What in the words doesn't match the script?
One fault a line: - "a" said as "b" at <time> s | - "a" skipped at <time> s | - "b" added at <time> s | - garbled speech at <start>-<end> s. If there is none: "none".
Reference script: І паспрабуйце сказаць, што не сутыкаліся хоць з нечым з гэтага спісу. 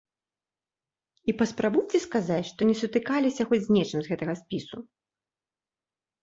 none